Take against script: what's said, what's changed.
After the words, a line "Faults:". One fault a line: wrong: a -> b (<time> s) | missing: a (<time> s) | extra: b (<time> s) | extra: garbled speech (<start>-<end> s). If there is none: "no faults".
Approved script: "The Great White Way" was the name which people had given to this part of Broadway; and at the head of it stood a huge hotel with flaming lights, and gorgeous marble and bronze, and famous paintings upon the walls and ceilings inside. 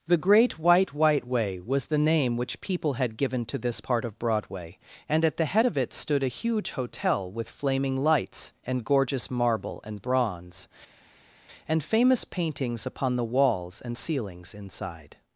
"The Great White White Way" was the name which people had given to this part of Broadway; and at the head of it stood a huge hotel with flaming lights, and gorgeous marble and bronze, and famous paintings upon the walls and ceilings inside.
Faults:
extra: White (0.9 s)